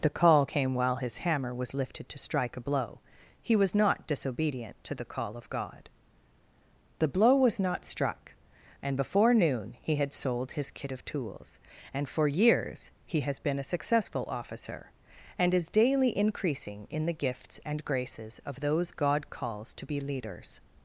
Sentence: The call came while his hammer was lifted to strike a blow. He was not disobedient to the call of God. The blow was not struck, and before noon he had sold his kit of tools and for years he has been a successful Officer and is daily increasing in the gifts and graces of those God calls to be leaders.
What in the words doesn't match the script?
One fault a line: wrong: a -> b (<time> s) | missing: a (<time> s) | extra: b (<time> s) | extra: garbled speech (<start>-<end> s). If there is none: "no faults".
no faults